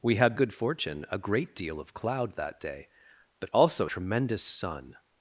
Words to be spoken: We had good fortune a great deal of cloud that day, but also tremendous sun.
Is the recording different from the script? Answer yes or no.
no